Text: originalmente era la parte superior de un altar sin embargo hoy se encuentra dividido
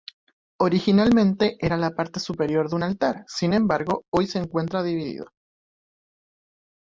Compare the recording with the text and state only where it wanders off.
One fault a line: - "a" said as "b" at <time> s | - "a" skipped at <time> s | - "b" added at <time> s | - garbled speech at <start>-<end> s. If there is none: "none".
none